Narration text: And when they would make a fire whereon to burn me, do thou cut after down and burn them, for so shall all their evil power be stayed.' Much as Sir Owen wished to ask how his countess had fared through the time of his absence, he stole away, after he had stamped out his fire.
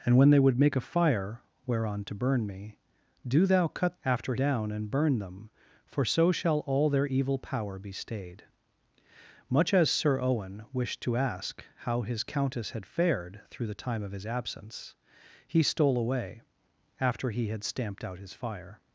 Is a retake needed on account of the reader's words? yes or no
no